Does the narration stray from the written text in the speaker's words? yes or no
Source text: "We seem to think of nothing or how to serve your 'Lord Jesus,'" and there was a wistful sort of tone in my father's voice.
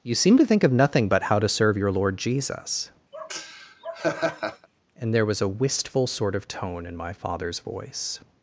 yes